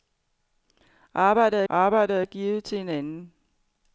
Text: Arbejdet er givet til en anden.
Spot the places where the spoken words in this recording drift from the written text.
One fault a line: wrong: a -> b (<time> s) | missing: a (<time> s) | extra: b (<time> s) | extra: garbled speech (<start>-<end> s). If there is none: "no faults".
extra: arbejdet (1.7 s)